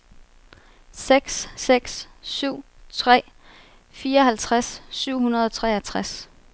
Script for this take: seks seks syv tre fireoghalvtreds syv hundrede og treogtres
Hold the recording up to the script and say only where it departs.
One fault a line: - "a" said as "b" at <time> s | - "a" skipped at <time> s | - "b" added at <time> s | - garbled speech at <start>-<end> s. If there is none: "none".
none